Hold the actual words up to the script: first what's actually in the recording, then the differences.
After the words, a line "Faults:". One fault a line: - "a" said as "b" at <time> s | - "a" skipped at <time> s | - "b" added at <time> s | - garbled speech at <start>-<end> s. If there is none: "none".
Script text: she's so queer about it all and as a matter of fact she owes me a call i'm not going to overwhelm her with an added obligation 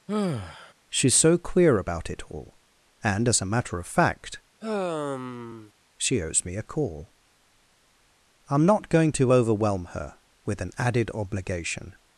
she's so queer about it all and as a matter of fact she owes me a call i'm not going to overwhelm her with an added obligation
Faults:
none